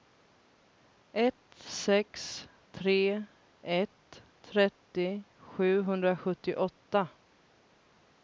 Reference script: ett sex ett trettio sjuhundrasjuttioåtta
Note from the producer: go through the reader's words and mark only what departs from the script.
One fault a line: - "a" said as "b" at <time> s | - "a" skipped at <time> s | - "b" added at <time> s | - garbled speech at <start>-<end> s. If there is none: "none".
- "tre" added at 2.7 s